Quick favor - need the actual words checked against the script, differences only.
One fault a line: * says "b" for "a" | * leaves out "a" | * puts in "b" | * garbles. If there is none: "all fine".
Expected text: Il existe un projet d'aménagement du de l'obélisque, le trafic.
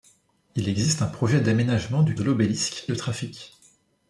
all fine